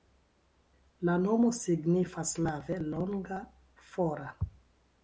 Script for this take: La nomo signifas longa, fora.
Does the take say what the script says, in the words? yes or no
no